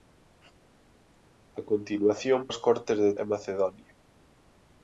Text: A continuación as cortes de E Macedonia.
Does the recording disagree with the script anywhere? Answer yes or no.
no